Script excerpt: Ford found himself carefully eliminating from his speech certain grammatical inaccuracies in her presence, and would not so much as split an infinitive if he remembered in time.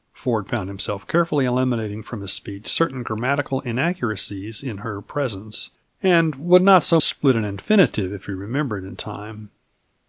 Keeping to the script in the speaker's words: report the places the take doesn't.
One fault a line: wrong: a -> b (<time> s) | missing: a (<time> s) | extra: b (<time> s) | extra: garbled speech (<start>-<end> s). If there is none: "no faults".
missing: much as (7.0 s)